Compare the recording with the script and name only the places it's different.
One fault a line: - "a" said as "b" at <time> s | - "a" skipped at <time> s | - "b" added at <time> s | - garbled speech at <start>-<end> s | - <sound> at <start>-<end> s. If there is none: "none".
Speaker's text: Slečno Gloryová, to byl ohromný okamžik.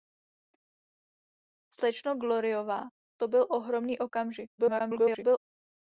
- garbled speech at 4.6-5.4 s